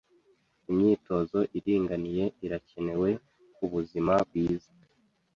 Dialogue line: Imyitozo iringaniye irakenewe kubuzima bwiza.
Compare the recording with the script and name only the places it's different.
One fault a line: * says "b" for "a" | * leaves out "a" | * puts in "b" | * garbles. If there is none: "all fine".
all fine